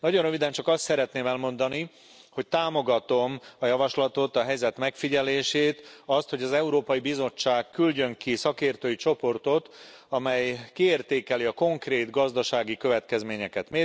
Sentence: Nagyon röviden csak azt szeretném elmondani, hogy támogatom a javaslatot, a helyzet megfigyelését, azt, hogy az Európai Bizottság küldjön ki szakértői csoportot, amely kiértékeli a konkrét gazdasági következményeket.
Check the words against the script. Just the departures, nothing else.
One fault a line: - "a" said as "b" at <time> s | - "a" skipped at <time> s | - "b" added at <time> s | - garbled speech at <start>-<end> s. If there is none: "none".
none